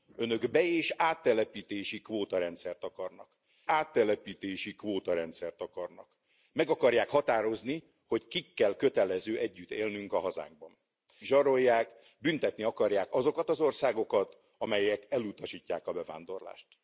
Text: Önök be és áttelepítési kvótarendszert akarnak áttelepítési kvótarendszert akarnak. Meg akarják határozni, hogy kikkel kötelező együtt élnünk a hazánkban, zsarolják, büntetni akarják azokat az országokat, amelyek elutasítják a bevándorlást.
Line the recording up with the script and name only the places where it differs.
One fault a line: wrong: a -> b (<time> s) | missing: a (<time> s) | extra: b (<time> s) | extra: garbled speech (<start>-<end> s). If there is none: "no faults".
no faults